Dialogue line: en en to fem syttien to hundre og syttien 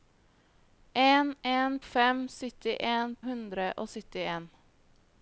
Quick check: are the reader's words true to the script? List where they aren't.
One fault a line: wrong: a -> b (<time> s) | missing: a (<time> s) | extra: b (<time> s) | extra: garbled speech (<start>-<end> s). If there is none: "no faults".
missing: to (1.8 s)
missing: to (3.2 s)